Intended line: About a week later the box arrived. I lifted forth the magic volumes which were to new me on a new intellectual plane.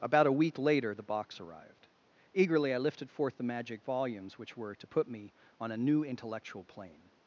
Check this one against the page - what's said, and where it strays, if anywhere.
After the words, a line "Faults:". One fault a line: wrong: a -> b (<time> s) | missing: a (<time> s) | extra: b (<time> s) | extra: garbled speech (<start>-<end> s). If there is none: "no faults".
About a week later the box arrived. Eagerly I lifted forth the magic volumes which were to put me on a new intellectual plane.
Faults:
extra: Eagerly (2.3 s)
wrong: new -> put (4.8 s)